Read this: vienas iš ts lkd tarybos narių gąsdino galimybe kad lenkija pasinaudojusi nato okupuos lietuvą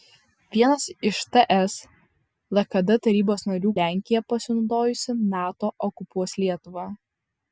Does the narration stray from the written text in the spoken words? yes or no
yes